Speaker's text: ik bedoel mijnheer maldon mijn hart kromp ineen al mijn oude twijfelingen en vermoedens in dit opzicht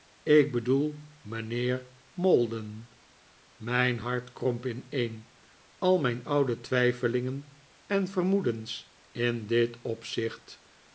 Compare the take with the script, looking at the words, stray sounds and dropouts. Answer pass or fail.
pass